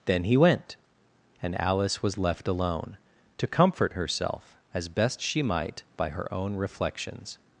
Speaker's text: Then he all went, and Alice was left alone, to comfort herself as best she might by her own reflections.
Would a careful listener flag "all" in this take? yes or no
yes